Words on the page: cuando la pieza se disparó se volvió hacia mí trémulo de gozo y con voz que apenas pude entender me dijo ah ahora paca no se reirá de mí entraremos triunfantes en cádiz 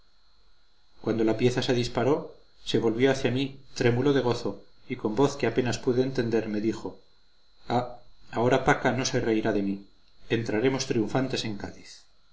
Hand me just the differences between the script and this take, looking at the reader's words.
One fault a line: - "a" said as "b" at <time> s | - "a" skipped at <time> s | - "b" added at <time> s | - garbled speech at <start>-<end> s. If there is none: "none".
none